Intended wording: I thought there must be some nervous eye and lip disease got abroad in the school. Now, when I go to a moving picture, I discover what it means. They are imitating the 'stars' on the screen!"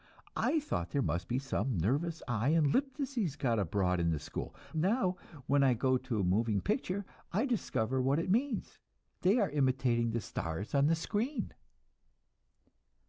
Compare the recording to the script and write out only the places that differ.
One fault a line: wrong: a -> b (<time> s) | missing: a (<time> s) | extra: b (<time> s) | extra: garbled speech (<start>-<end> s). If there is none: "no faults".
no faults